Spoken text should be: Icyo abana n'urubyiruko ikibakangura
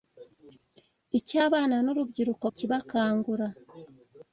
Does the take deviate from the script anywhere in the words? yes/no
no